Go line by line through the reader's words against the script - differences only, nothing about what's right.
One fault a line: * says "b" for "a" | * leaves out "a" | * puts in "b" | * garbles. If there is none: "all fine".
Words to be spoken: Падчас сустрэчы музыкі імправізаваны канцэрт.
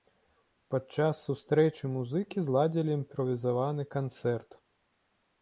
* puts in "зладзілі"